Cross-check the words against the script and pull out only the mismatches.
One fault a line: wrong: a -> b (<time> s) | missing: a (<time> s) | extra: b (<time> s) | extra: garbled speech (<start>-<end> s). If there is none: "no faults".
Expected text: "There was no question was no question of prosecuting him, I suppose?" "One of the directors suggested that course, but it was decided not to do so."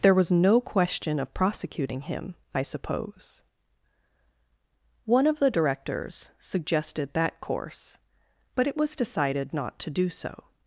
missing: was no question (1.2 s)